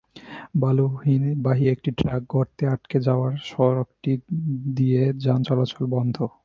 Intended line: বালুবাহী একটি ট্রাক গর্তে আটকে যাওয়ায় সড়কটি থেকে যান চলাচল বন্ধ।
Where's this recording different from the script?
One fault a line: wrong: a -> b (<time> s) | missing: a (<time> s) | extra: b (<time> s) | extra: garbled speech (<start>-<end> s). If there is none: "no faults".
wrong: থেকে -> দিয়ে (4.8 s)